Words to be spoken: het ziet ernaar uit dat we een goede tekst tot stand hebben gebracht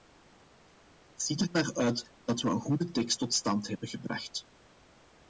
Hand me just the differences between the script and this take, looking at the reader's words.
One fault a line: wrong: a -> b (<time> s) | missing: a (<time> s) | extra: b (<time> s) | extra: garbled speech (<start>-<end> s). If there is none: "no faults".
no faults